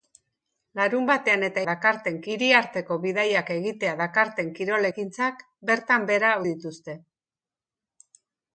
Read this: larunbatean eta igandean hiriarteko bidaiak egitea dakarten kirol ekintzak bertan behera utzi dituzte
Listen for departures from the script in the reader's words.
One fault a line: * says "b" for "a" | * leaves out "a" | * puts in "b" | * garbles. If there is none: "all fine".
* says "dakarten" for "igandean"
* leaves out "utzi"